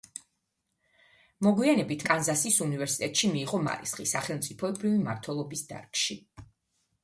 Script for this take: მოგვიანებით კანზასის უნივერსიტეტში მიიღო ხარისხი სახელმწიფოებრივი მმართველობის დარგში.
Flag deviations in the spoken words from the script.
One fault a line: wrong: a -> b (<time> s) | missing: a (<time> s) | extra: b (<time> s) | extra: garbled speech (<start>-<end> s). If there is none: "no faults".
no faults